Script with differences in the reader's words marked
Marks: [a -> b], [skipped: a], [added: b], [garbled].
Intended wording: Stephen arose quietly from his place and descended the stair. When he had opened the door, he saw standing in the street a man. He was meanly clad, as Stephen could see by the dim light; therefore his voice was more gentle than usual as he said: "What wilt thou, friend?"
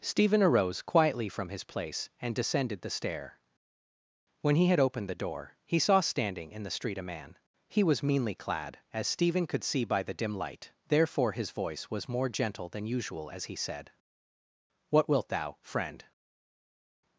Stephen arose quietly from his place and descended the stair. When he had opened the door, he saw standing in the street a man. He was meanly clad, as Stephen could see by the dim light; therefore his voice was more gentle than usual as he said: "What wilt thou, friend?"